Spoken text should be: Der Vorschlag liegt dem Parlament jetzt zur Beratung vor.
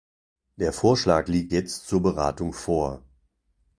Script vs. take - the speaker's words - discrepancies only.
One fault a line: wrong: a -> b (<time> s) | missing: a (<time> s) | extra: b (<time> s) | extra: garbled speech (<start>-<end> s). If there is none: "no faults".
missing: dem Parlament (1.5 s)